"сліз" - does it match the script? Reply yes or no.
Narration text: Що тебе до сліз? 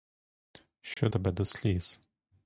yes